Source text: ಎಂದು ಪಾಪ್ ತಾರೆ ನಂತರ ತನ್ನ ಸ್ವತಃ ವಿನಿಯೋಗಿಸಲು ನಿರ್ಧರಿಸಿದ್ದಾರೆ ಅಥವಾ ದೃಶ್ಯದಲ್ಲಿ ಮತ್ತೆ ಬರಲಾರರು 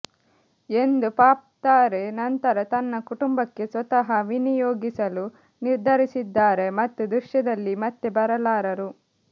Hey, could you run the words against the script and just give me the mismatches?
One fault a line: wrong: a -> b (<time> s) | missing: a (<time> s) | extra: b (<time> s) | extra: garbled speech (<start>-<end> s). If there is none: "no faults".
extra: ಕುಟುಂಬಕ್ಕೆ (3.1 s)
wrong: ಅಥವಾ -> ಮತ್ತು (6.8 s)